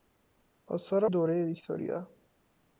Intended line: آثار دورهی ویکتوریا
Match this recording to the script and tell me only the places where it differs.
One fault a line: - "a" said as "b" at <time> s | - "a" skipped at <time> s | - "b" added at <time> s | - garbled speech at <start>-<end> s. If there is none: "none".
none